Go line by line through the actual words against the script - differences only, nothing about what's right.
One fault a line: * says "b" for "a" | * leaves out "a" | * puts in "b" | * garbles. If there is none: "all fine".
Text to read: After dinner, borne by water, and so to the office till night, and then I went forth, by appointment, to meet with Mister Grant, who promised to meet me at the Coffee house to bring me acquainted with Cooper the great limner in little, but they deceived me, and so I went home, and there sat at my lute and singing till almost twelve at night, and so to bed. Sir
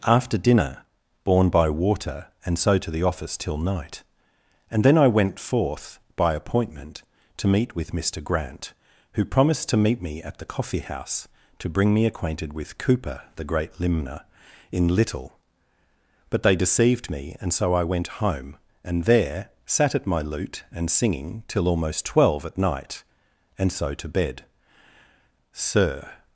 all fine